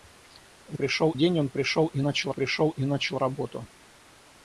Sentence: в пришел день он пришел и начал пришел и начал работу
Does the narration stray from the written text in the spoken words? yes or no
no